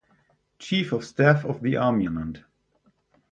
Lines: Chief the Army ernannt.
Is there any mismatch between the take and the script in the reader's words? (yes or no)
yes